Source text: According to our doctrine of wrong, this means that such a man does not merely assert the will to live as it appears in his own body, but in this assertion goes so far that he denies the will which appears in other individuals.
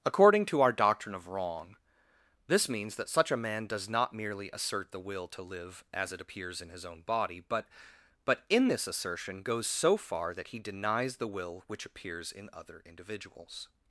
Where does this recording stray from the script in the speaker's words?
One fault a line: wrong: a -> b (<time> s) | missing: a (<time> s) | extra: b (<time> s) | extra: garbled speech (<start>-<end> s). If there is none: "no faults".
extra: but (8.2 s)